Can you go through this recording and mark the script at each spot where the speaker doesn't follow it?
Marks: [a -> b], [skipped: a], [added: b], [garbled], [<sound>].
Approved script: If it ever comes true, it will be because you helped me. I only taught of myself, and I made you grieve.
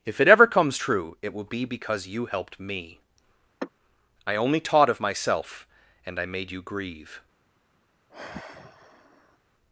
If it ever comes true, it will be because you helped me. [sigh] I only taught of myself, and I made you grieve. [sigh]